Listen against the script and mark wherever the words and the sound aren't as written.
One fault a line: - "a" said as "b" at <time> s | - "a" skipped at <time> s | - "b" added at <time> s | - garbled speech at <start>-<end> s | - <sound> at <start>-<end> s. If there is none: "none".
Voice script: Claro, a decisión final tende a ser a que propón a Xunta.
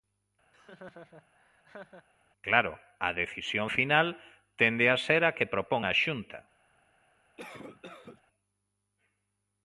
- laugh at 0.5-2.1 s
- cough at 7.4-8.2 s